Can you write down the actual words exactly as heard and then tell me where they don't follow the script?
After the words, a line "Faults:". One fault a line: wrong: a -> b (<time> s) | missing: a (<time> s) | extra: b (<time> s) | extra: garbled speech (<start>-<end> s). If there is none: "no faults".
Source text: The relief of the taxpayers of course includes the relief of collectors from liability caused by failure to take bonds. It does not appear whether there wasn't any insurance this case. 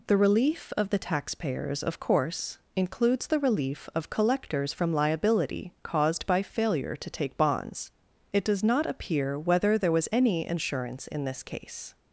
The relief of the taxpayers of course includes the relief of collectors from liability caused by failure to take bonds. It does not appear whether there was any insurance in this case.
Faults:
wrong: wasn't -> was (9.9 s)
extra: in (11.1 s)